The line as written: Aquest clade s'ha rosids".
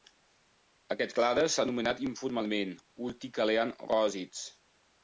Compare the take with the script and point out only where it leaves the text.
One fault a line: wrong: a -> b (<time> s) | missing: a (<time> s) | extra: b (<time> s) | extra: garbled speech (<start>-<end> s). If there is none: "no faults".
extra: anomenat informalment urticalean (1.7 s)